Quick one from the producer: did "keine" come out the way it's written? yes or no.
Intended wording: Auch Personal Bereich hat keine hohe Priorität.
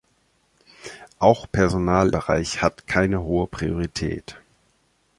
yes